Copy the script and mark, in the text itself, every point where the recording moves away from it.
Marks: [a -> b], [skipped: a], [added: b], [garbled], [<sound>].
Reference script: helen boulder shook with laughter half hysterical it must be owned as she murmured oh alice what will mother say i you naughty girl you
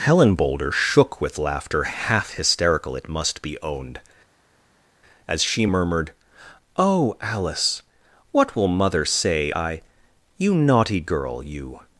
helen boulder shook with laughter half hysterical it must be owned as she murmured oh alice what will mother say i you naughty girl you